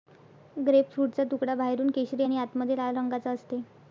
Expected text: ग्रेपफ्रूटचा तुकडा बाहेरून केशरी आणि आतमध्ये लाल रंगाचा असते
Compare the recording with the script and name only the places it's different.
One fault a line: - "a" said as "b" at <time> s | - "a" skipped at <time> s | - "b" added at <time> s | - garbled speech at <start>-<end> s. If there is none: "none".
none